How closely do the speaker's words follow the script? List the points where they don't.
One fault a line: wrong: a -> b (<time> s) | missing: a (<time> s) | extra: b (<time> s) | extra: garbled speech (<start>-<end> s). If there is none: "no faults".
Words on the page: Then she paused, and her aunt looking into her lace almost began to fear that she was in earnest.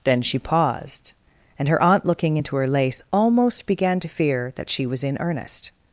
no faults